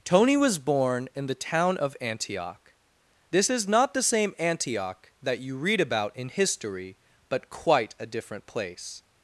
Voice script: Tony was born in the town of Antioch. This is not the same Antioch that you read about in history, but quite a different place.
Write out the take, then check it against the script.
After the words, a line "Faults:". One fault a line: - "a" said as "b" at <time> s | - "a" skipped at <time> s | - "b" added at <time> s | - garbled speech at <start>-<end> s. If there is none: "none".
Tony was born in the town of Antioch. This is not the same Antioch that you read about in history, but quite a different place.
Faults:
none